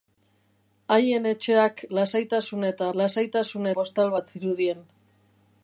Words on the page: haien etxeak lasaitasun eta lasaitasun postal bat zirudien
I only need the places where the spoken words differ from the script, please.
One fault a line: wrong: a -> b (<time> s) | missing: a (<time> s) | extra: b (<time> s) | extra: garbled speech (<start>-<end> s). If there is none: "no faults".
no faults